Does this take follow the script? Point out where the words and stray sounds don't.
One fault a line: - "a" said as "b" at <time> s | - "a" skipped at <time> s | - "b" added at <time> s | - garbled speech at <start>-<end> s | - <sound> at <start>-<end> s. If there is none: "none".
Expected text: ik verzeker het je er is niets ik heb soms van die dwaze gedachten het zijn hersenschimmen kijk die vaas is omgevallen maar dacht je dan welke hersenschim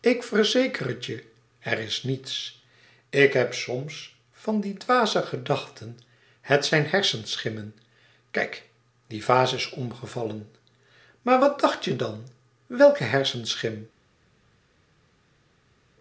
- "wat" added at 11.4 s